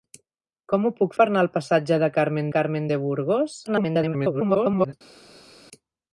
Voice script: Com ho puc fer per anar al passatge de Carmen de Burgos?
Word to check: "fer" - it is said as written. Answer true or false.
false